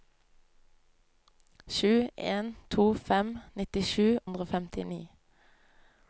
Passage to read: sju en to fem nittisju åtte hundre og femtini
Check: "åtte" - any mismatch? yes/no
yes